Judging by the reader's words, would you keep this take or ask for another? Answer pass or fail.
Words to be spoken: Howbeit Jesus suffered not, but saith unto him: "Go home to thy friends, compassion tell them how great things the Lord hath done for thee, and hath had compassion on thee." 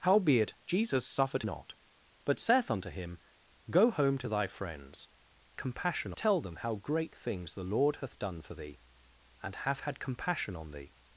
pass